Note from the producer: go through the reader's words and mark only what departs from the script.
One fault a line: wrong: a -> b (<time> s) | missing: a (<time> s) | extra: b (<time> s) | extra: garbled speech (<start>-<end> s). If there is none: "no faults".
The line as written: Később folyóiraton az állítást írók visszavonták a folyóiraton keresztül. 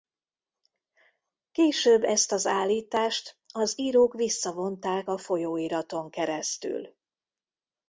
wrong: folyóiraton -> ezt (2.0 s)
extra: az (3.5 s)